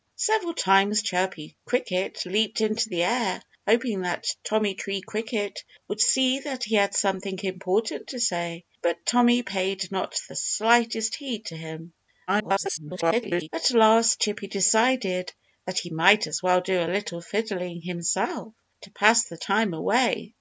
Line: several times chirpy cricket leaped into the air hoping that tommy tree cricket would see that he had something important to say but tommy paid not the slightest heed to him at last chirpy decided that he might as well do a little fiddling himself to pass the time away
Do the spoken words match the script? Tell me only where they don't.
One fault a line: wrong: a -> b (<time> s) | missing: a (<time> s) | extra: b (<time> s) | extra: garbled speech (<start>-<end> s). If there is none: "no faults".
extra: garbled speech (12.3-13.5 s)